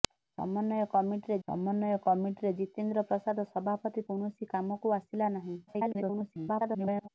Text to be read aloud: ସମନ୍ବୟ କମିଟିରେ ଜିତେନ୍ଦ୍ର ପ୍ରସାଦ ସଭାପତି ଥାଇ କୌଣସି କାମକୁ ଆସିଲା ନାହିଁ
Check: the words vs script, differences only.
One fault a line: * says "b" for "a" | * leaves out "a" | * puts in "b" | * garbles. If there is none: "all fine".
* puts in "ସମନ୍ବୟ କମିଟିରେ"
* leaves out "ଥାଇ"
* garbles